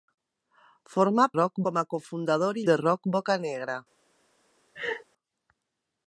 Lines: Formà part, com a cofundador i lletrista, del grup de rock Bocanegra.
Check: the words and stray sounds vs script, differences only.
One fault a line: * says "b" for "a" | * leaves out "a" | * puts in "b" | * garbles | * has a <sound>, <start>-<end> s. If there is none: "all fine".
* says "rock" for "part"
* leaves out "lletrista del grup"
* has a laugh, 4.7-5.0 s